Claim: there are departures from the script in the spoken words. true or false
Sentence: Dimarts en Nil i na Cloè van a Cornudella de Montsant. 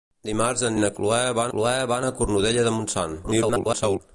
true